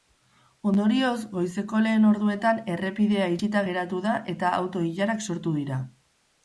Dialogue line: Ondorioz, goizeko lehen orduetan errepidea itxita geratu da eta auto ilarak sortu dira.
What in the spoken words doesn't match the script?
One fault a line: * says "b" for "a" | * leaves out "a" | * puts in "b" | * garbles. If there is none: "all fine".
all fine